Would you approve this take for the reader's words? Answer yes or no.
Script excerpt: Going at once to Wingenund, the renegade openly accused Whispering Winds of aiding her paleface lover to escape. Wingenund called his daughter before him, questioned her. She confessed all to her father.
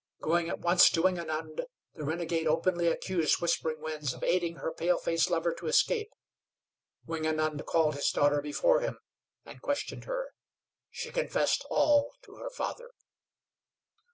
no